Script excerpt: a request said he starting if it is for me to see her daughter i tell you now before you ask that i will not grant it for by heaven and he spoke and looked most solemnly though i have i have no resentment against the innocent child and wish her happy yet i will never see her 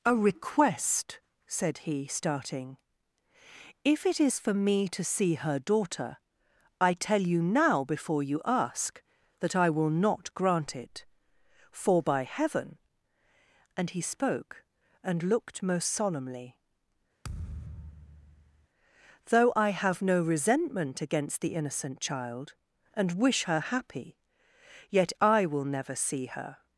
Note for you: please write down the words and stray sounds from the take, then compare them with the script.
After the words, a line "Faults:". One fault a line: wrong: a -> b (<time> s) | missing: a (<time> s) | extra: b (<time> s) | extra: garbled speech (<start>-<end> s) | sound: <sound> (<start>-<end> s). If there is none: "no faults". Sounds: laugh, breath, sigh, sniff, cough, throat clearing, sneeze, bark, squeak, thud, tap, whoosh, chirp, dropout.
a request said he starting if it is for me to see her daughter i tell you now before you ask that i will not grant it for by heaven and he spoke and looked most solemnly though i have no resentment against the innocent child and wish her happy yet i will never see her
Faults:
sound: thud (17.2-18.7 s)
missing: i have (20.0 s)